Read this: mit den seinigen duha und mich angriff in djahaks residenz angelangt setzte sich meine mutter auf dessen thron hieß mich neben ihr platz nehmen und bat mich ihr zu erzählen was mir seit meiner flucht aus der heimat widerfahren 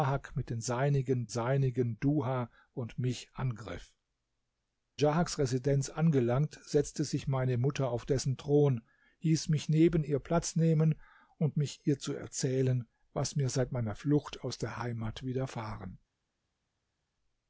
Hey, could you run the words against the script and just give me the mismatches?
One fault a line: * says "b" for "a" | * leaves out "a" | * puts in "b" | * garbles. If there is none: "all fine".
* puts in "seinigen"
* leaves out "in"
* leaves out "bat"